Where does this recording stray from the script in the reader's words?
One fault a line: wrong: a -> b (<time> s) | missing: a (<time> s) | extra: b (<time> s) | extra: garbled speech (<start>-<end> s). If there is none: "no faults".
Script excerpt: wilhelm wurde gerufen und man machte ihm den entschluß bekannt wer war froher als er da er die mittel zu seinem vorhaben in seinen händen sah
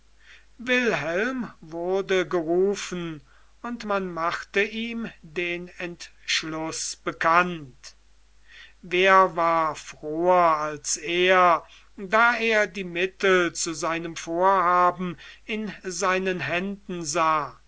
no faults